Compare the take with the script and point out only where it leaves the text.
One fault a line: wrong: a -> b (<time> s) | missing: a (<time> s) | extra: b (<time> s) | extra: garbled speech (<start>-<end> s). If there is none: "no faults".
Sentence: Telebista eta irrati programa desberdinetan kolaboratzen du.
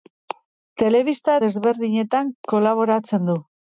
missing: eta irrati programa (1.4 s)